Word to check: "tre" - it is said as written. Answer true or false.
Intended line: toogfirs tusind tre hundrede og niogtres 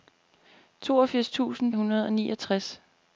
false